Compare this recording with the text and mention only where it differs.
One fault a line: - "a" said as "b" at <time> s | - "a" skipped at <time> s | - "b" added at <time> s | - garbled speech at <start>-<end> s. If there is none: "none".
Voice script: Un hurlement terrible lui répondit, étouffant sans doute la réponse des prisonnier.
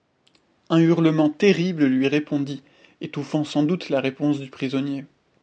- "des" said as "du" at 4.4 s